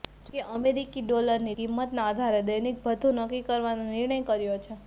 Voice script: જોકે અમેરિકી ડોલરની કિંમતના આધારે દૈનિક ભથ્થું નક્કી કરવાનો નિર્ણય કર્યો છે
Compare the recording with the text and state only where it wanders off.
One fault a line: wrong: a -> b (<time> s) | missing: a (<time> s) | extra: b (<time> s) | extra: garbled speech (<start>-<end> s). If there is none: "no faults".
no faults